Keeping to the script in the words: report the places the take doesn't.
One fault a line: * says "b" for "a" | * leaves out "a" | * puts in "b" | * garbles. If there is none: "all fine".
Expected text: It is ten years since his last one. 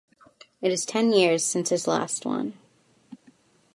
all fine